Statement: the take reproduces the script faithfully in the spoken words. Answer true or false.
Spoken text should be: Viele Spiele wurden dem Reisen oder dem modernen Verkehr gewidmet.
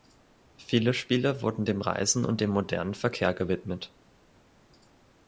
false